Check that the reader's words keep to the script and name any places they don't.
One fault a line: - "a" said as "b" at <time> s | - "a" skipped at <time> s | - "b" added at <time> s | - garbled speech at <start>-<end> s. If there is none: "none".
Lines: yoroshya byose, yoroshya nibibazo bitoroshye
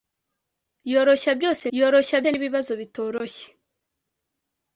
none